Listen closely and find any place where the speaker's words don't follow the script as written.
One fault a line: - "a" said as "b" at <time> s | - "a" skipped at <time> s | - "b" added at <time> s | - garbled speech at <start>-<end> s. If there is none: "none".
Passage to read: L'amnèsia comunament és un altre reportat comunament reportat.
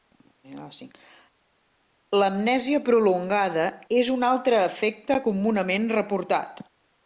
- "comunament" said as "prolongada" at 2.9 s
- "reportat" said as "efecte" at 4.7 s